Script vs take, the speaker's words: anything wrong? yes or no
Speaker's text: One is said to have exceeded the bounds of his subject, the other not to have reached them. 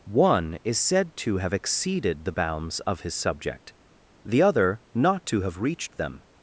no